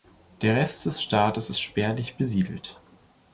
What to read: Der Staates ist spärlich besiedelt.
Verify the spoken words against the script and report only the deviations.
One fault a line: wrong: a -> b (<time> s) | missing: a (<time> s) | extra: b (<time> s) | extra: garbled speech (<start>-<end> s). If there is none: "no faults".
extra: Rest des (0.6 s)